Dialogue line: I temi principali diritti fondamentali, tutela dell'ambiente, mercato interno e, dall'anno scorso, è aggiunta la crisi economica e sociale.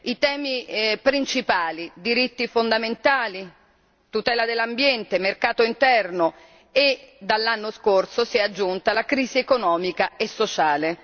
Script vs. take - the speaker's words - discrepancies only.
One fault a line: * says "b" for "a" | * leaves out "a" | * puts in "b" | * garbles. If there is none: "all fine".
* puts in "si"